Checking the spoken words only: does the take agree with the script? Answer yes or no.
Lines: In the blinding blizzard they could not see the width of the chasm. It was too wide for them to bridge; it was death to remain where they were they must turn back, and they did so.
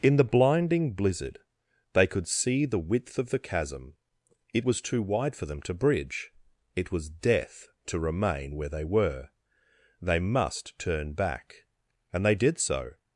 no